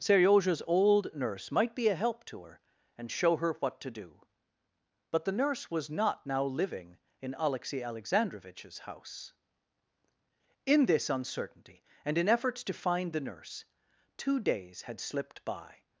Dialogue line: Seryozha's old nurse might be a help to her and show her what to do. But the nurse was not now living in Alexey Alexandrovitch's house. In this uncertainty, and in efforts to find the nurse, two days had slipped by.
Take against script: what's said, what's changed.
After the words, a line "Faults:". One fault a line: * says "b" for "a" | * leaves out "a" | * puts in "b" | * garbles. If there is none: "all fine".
Seryozha's old nurse might be a help to her and show her what to do. But the nurse was not now living in Alexey Alexandrovitch's house. In this uncertainty, and in efforts to find the nurse, two days had slipped by.
Faults:
all fine